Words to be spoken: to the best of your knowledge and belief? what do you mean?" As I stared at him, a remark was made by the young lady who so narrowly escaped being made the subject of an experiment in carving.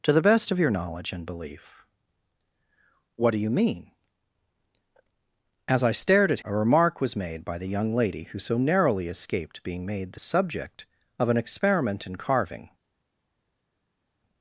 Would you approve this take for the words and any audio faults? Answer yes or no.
no